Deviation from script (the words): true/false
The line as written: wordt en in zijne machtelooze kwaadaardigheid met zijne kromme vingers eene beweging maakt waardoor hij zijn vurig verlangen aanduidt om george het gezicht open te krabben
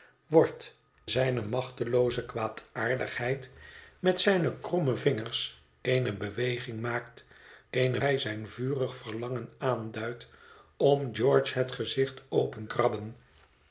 true